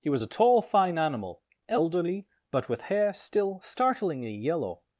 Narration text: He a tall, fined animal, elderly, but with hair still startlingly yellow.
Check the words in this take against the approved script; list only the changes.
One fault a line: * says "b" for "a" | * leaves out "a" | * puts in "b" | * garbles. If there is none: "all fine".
* puts in "was"
* says "fine" for "fined"